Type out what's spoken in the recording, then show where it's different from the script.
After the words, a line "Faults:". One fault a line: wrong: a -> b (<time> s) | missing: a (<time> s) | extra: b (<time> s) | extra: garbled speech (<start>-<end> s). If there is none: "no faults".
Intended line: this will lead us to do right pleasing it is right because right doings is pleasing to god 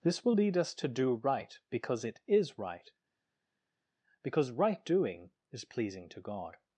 this will lead us to do right because it is right because right doing is pleasing to god
Faults:
wrong: pleasing -> because (1.7 s)
wrong: doings -> doing (4.9 s)